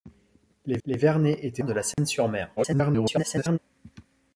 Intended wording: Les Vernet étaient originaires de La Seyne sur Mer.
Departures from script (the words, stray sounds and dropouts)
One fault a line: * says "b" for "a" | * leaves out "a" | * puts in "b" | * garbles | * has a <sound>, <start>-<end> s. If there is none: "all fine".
* puts in "les"
* leaves out "originaires"
* has a dropout, 1.9-2.0 s
* garbles